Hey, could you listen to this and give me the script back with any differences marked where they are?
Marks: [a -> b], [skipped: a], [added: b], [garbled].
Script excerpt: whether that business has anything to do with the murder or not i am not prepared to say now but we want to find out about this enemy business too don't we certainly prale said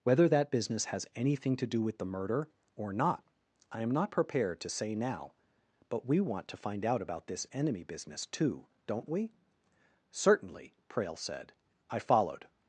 whether that business has anything to do with the murder or not i am not prepared to say now but we want to find out about this enemy business too don't we certainly prale said [added: i followed]